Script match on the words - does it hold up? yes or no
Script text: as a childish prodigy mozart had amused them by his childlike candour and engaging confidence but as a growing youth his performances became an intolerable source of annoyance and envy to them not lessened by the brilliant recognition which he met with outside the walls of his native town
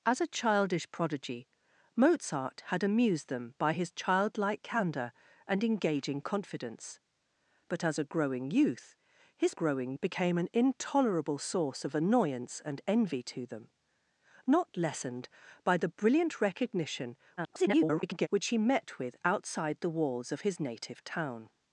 no